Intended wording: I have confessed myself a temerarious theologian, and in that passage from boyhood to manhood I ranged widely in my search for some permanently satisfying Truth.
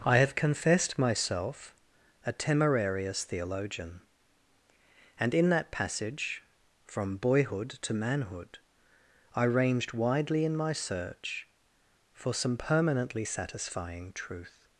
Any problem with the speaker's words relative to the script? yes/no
no